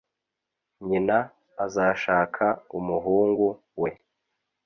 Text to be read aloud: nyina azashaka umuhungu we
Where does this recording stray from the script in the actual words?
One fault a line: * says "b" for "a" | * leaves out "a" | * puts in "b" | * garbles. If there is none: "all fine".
all fine